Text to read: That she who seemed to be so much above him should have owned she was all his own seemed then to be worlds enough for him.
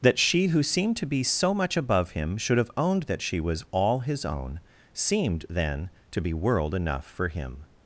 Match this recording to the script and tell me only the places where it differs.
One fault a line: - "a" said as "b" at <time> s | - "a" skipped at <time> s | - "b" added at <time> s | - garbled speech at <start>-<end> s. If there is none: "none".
- "that" added at 3.0 s
- "worlds" said as "world" at 6.3 s